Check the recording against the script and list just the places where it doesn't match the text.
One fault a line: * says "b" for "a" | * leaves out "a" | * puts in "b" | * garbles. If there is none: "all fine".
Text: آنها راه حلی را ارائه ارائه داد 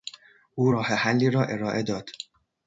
* says "او" for "آنها"
* leaves out "ارائه"